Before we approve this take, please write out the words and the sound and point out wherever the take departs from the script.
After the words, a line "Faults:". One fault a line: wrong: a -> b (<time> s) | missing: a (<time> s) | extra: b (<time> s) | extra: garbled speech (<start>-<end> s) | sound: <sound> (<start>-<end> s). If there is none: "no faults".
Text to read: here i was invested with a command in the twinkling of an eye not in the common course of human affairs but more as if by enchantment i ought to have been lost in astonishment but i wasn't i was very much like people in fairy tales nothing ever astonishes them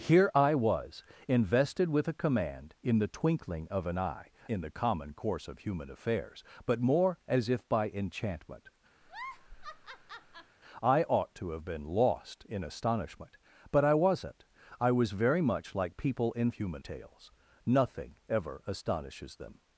here i was invested with a command in the twinkling of an eye in the common course of human affairs but more as if by enchantment i ought to have been lost in astonishment but i wasn't i was very much like people in human tales nothing ever astonishes them
Faults:
missing: not (4.3 s)
sound: laugh (9.0-10.6 s)
wrong: fairy -> human (16.5 s)